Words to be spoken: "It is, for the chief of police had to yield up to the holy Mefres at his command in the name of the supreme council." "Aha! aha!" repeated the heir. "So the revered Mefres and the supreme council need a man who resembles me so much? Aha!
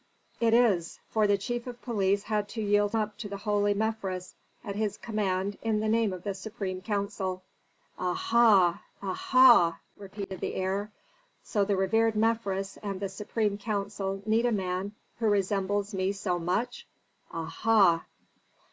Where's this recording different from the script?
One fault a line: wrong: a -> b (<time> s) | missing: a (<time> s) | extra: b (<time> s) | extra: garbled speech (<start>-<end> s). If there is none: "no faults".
no faults